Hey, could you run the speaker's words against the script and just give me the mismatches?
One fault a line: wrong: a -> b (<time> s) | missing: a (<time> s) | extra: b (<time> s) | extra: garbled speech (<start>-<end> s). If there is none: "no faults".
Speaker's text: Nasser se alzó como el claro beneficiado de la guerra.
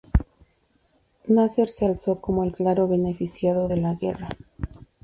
no faults